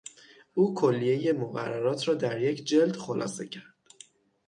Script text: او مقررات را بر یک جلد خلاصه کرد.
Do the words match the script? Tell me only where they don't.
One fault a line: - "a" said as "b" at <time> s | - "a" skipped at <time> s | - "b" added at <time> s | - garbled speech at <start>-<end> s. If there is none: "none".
- "کلیهی" added at 0.8 s
- "بر" said as "در" at 2.1 s